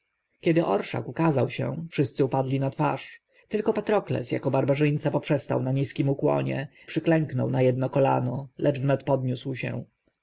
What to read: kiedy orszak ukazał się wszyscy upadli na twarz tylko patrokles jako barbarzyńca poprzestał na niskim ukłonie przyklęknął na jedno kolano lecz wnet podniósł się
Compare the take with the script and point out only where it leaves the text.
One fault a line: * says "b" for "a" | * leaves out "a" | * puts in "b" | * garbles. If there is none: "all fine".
all fine